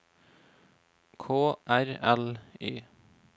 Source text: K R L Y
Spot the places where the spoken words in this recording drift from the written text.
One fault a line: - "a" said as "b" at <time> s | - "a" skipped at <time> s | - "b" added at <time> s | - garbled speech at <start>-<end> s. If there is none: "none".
none